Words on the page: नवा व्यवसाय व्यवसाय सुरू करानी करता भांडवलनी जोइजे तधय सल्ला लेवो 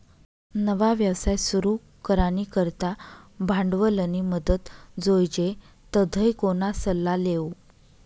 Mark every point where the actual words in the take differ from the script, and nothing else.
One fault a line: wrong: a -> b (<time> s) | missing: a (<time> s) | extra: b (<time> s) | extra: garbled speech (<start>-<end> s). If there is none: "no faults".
missing: व्यवसाय (1.4 s)
extra: मदत (4.3 s)
extra: कोणा (6.4 s)